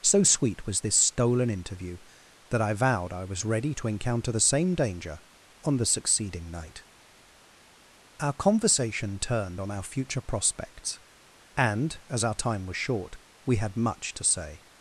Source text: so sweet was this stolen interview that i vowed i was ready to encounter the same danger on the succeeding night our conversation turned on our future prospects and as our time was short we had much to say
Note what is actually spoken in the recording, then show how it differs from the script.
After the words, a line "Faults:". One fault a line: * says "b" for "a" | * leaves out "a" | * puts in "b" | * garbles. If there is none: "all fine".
so sweet was this stolen interview that i vowed i was ready to encounter the same danger on the succeeding night our conversation turned on our future prospects and as our time was short we had much to say
Faults:
all fine